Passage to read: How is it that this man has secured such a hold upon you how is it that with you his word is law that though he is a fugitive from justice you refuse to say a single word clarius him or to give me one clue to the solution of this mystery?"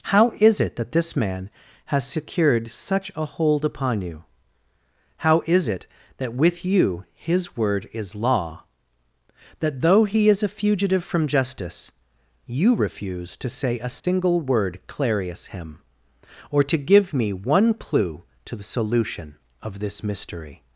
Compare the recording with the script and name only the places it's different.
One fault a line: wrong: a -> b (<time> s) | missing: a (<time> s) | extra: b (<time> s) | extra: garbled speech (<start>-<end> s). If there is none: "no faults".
no faults